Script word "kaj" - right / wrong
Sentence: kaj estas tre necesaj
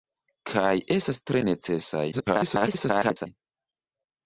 right